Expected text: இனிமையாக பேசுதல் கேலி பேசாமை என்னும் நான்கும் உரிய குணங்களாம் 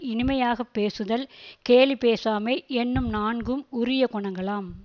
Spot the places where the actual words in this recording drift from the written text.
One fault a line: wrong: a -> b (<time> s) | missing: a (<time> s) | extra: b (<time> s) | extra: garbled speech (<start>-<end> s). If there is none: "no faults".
no faults